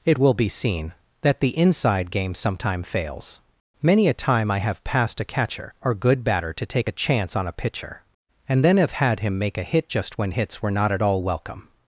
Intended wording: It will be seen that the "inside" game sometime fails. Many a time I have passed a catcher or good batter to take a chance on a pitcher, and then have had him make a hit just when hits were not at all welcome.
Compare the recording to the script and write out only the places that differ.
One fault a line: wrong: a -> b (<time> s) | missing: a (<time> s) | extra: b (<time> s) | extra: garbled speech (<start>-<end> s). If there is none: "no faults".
no faults